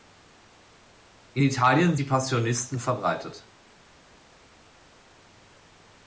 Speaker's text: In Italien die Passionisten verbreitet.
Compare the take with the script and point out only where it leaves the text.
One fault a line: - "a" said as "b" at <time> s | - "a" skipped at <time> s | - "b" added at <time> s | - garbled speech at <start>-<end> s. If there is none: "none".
none